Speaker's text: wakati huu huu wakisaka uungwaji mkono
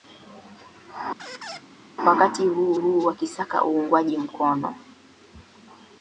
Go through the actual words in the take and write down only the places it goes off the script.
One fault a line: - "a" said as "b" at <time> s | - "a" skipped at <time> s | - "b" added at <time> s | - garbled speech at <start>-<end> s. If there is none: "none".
none